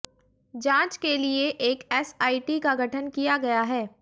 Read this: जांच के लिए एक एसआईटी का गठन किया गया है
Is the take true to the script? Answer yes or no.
yes